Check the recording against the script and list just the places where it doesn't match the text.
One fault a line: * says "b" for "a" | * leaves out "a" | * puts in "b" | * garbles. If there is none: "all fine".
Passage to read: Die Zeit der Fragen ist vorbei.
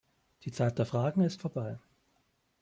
all fine